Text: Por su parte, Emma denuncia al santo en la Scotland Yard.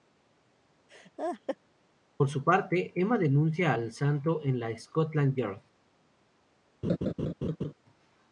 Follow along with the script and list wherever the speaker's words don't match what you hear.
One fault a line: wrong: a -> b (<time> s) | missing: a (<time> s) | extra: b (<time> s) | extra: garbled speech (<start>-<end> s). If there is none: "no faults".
no faults